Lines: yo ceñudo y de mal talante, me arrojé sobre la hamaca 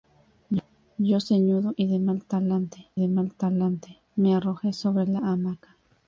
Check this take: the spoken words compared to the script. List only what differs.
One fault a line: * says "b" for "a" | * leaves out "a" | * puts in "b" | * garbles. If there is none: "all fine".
* puts in "de mal talante"